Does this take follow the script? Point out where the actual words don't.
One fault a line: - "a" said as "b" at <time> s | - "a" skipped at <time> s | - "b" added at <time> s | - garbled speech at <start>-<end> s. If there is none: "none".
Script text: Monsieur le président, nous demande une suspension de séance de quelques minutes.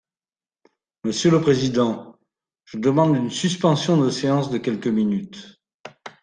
- "nous" said as "je" at 2.6 s